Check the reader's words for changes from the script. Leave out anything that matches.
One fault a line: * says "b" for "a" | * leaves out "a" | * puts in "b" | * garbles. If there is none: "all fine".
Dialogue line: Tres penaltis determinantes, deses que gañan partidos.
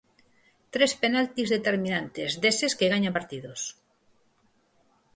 all fine